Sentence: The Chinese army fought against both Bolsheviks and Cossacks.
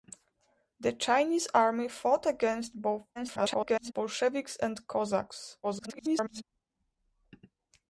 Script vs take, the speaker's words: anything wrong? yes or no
yes